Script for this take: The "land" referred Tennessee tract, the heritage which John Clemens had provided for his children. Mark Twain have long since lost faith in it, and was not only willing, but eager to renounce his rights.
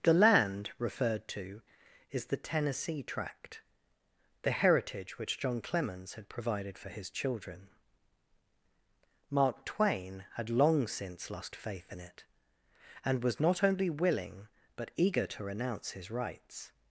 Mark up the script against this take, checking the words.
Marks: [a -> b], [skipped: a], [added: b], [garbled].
The "land" referred [added: to is the] Tennessee tract, the heritage which John Clemens had provided for his children. Mark Twain [have -> had] long since lost faith in it, and was not only willing, but eager to renounce his rights.